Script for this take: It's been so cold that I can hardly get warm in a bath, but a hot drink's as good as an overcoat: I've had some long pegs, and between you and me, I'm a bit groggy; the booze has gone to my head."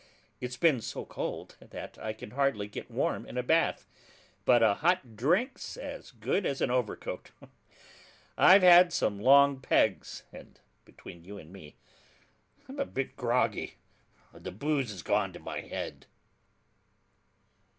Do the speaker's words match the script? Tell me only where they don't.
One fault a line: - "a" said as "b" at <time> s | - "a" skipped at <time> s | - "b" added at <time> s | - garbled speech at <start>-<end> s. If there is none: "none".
none